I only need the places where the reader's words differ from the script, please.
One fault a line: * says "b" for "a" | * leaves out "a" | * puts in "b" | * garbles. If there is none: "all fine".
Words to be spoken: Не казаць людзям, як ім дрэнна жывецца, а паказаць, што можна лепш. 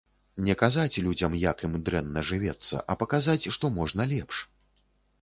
all fine